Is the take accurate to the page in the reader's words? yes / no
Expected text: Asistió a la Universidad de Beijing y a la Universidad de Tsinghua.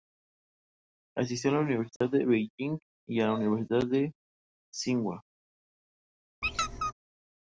yes